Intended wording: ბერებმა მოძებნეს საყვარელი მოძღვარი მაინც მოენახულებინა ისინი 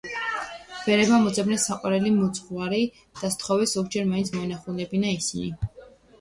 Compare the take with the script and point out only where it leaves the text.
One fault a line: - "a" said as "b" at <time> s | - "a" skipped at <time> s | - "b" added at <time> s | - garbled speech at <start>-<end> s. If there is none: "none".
- "და სთხოვეს ზოგჯერ" added at 3.2 s